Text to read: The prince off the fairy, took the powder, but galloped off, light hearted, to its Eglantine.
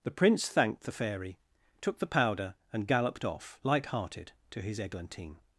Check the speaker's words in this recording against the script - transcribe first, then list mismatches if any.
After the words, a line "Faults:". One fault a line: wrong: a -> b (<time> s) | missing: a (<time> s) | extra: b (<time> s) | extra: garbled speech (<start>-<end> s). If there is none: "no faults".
The prince thanked the fairy, took the powder, and galloped off, light hearted, to his Eglantine.
Faults:
wrong: off -> thanked (0.5 s)
wrong: but -> and (2.7 s)
wrong: its -> his (4.6 s)